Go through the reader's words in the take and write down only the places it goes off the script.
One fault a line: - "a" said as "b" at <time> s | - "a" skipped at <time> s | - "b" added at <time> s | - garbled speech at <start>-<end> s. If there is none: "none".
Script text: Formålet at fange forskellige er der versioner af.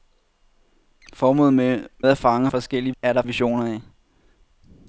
none